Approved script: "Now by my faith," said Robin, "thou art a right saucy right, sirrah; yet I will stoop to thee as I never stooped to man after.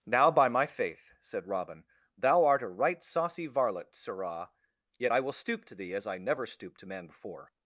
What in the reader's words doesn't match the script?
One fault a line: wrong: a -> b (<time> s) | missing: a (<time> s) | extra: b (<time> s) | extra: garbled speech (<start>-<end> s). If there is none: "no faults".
wrong: right -> varlet (3.5 s)
wrong: after -> before (7.1 s)